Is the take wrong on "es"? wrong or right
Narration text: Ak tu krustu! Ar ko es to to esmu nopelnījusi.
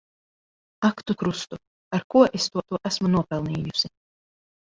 right